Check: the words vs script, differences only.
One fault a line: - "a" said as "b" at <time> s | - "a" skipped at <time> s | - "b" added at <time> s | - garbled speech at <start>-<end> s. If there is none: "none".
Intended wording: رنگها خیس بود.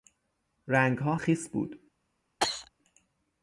none